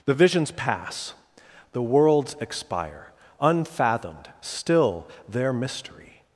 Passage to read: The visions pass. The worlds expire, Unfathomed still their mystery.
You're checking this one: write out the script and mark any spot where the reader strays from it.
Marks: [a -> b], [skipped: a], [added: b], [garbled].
The visions pass. The worlds expire, Unfathomed still their mystery.